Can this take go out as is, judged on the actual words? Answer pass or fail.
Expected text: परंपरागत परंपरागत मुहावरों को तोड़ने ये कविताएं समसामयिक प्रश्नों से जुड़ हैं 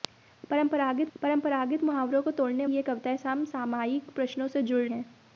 pass